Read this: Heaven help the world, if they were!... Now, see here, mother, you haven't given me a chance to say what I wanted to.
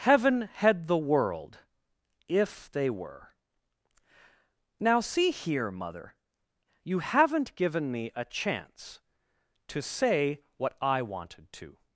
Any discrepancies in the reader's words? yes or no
yes